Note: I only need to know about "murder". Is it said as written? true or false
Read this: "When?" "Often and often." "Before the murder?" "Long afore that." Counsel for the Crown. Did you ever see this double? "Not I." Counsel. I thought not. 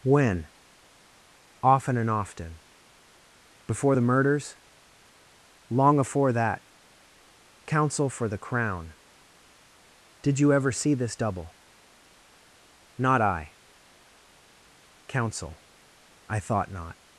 false